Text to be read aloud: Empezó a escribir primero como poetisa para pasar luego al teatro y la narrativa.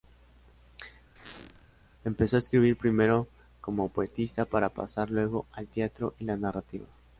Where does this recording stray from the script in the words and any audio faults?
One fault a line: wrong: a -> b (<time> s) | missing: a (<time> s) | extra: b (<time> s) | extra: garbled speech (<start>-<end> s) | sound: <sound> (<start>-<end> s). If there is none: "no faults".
sound: squeak (1.2-1.7 s)